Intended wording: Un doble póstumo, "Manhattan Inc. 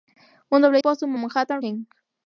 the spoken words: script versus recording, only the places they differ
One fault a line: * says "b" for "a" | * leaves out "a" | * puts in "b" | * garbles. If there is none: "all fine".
all fine